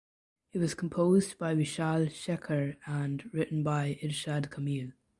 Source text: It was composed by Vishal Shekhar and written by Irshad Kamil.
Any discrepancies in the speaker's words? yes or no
no